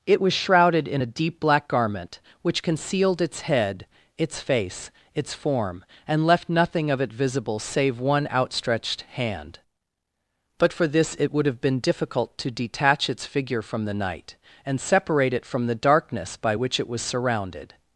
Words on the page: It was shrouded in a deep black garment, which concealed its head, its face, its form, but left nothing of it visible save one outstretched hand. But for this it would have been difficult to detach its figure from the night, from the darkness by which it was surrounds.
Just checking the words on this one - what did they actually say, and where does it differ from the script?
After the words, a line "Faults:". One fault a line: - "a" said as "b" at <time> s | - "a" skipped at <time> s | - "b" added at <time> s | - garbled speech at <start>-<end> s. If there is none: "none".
It was shrouded in a deep black garment, which concealed its head, its face, its form, and left nothing of it visible save one outstretched hand. But for this it would have been difficult to detach its figure from the night, and separate it from the darkness by which it was surrounded.
Faults:
- "but" said as "and" at 6.1 s
- "and separate it" added at 14.6 s
- "surrounds" said as "surrounded" at 17.0 s